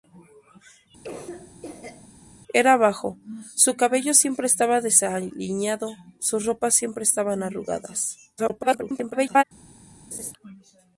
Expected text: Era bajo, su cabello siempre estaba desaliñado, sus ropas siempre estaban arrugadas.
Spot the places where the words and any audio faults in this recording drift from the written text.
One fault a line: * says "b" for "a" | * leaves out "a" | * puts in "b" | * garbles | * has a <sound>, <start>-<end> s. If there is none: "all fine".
* has a cough, 1.0-2.1 s
* garbles
* has a laugh, 10.1-10.3 s